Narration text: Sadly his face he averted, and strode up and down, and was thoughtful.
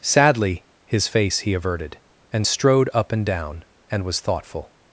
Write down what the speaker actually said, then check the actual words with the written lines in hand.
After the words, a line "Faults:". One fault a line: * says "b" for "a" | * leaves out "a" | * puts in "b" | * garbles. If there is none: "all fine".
Sadly his face he averted, and strode up and down, and was thoughtful.
Faults:
all fine